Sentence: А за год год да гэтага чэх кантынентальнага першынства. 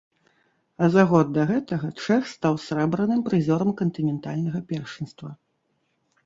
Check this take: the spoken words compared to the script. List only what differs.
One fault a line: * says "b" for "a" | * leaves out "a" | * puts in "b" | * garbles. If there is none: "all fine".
* leaves out "год"
* puts in "стаў срэбраным прызёрам"